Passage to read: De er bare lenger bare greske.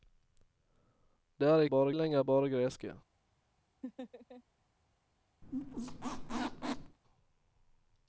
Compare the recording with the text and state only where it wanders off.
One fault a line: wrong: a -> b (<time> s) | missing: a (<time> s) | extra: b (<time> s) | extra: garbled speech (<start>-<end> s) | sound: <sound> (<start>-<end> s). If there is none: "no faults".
sound: laugh (3.8-4.4 s)
sound: squeak (5.4-7.0 s)